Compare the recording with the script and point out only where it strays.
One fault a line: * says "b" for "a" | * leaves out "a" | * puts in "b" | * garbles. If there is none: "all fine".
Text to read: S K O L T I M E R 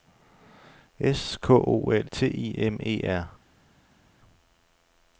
all fine